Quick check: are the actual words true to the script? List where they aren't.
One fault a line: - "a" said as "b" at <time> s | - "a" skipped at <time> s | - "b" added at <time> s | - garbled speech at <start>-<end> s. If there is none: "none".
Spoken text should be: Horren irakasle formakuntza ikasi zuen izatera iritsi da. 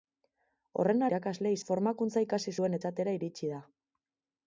none